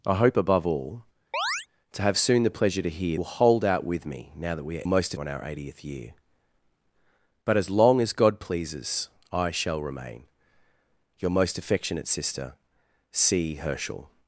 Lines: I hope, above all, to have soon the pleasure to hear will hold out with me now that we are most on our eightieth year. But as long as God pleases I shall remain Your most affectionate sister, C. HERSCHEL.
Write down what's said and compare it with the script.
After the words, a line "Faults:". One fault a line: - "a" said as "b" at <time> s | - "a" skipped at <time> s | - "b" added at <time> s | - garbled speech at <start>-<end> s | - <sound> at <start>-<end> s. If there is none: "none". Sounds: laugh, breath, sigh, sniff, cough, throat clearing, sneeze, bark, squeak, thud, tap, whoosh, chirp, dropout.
I hope, above all, to have soon the pleasure to hear will hold out with me now that we are most on our eightieth year. But as long as God pleases I shall remain Your most affectionate sister, C. HERSCHEL.
Faults:
- chirp at 1.3-1.7 s